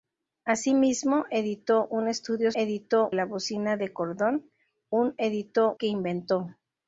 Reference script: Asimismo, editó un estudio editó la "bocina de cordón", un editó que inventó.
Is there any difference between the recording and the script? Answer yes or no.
no